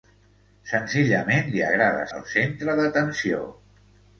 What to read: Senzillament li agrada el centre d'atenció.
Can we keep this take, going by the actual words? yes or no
yes